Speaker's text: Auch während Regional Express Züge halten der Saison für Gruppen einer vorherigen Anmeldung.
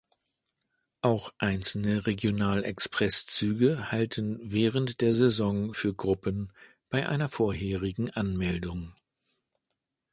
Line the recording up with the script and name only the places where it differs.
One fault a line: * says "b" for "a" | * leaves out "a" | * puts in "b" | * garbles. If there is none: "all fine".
* says "einzelne" for "während"
* puts in "während"
* puts in "bei"